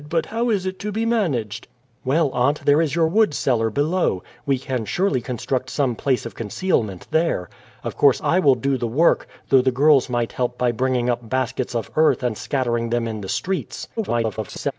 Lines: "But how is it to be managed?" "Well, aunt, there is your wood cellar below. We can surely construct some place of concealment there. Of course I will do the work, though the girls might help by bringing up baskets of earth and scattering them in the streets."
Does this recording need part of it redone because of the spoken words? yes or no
yes